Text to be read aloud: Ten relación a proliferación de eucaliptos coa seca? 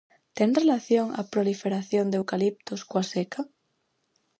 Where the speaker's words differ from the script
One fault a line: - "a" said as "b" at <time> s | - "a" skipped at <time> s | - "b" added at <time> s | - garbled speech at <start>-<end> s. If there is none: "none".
none